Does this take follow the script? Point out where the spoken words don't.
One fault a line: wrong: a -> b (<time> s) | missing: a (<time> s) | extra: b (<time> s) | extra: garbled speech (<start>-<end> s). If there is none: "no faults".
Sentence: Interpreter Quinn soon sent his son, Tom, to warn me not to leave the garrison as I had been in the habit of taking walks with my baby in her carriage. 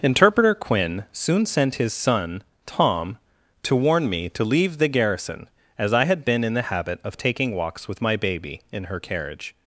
missing: not (4.3 s)